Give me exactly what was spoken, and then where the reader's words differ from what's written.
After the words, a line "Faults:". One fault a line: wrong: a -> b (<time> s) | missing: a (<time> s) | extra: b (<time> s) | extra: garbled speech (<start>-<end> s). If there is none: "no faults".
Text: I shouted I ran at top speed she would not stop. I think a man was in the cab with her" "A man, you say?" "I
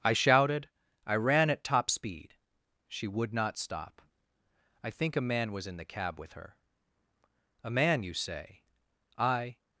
I shouted I ran at top speed she would not stop. I think a man was in the cab with her" "A man, you say?" "I
Faults:
no faults